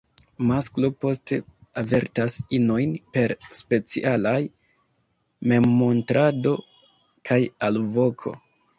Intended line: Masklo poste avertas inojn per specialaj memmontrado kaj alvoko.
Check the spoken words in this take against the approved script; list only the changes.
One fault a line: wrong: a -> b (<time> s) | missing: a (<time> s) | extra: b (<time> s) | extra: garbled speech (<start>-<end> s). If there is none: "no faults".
no faults